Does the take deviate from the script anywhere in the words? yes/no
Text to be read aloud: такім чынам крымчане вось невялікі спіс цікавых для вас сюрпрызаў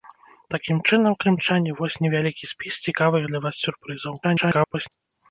yes